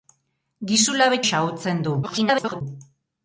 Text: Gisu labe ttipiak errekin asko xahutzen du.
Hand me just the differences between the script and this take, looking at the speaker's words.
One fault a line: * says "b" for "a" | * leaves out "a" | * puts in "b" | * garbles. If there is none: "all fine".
* leaves out "ttipiak errekin asko"
* garbles